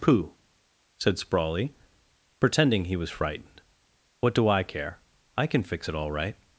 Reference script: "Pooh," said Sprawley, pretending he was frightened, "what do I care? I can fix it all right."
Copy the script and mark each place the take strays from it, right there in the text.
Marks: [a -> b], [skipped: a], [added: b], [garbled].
"Pooh," said Sprawley, pretending he was frightened, "what do I care? I can fix it all right."